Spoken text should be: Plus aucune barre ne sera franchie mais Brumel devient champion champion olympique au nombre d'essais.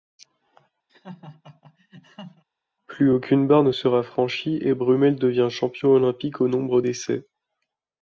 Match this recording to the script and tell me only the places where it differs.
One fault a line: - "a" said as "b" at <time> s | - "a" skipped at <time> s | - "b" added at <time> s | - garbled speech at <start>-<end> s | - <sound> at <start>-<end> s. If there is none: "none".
- laugh at 0.9-2.4 s
- "mais" said as "et" at 4.6 s
- "champion" skipped at 5.9 s